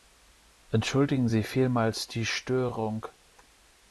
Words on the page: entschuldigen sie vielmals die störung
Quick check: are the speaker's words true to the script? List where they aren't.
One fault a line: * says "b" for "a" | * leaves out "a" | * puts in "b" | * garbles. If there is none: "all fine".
all fine